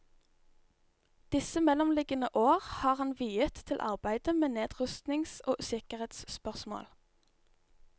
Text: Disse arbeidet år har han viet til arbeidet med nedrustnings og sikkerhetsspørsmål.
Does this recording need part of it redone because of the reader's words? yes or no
yes